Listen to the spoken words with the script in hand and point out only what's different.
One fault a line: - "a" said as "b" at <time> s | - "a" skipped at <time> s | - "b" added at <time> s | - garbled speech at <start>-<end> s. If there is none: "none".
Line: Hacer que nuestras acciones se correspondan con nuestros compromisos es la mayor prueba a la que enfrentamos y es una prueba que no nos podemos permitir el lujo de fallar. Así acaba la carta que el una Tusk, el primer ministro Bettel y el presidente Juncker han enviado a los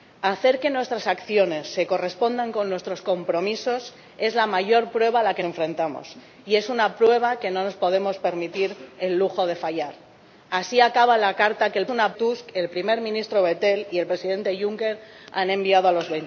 none